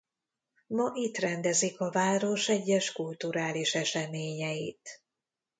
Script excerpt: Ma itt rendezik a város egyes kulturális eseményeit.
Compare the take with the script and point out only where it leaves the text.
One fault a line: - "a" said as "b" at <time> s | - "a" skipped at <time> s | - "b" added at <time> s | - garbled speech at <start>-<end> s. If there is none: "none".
none